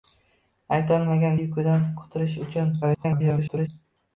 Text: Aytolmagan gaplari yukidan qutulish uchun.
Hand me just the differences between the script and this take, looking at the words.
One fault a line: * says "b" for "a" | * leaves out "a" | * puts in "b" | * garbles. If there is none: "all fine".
* leaves out "gaplari"
* garbles